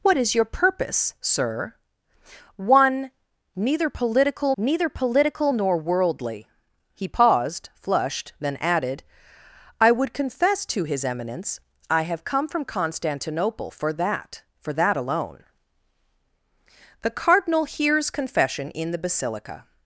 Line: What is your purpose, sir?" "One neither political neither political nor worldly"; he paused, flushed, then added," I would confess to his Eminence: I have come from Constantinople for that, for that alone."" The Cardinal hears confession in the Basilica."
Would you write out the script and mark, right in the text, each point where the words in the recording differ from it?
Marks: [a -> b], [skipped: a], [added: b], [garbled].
What is your purpose, sir?" "One neither political neither political nor worldly"; he paused, flushed, then added," I would confess to his Eminence: I have come from Constantinople for that, for that alone."" The Cardinal hears confession in the Basilica."